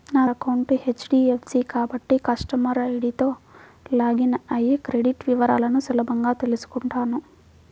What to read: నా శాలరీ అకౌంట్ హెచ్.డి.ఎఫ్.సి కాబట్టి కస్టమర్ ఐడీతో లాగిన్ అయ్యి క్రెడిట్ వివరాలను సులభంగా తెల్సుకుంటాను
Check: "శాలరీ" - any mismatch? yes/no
yes